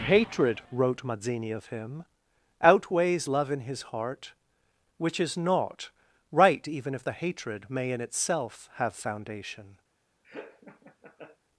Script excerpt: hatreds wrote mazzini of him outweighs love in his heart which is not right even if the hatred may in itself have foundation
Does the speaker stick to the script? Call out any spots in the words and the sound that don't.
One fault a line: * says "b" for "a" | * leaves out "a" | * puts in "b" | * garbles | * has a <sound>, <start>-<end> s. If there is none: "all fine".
* says "hatred" for "hatreds"
* has a laugh, 10.2-11.4 s